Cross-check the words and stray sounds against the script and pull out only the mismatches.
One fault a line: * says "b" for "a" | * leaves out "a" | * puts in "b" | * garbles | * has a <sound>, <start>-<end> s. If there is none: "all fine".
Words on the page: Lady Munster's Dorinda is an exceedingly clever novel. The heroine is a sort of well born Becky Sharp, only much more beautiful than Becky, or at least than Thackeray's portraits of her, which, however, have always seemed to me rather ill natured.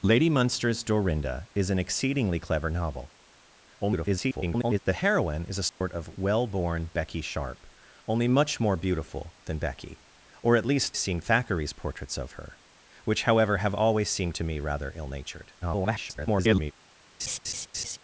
* garbles
* has a dropout, 5.7-5.8 s
* says "seemed" for "than"
* garbles
* has a laugh, 17.2-18.0 s